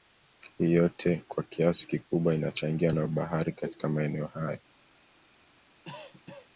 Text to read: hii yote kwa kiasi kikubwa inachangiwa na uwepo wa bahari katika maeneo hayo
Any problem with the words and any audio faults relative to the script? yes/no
yes